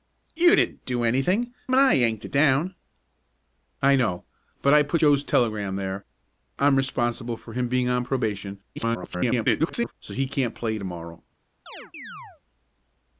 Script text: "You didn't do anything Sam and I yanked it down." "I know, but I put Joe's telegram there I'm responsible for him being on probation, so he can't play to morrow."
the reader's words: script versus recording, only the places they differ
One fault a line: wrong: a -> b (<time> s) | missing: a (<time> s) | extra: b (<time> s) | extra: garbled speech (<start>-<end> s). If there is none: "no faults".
missing: Sam (1.5 s)
extra: garbled speech (8.8-9.9 s)